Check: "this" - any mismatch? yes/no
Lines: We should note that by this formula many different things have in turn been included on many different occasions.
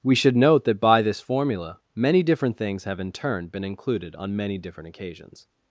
no